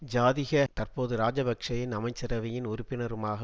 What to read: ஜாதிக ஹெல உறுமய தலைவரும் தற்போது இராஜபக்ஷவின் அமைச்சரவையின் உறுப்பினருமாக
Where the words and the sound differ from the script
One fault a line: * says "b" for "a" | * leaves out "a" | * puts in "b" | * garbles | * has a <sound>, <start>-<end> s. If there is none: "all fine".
* leaves out "ஹெல உறுமய தலைவரும்"